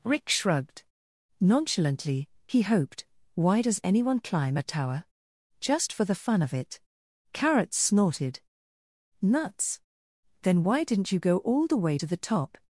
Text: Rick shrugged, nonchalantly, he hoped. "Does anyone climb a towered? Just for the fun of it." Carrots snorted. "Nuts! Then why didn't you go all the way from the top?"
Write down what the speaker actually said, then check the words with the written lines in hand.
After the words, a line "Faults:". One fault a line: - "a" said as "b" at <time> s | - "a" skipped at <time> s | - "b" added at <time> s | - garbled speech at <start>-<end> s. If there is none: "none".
Rick shrugged, nonchalantly, he hoped. "Why does anyone climb a tower? Just for the fun of it." Carrots snorted. "Nuts! Then why didn't you go all the way to the top?"
Faults:
- "Why" added at 3.3 s
- "towered" said as "tower" at 4.6 s
- "from" said as "to" at 11.9 s